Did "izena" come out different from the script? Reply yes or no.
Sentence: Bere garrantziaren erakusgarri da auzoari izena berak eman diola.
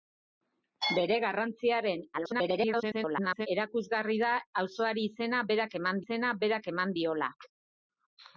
no